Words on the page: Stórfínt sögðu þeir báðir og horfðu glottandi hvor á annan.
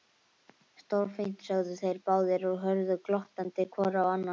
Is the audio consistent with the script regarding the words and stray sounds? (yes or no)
yes